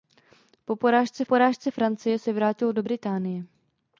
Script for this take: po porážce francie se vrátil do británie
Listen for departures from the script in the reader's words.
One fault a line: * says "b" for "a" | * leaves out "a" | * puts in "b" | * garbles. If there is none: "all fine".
* puts in "porážce"